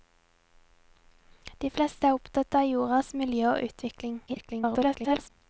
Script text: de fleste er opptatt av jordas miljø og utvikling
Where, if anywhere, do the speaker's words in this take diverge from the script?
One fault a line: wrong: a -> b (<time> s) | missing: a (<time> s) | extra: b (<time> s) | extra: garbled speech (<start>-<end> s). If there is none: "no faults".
extra: garbled speech (4.3-5.3 s)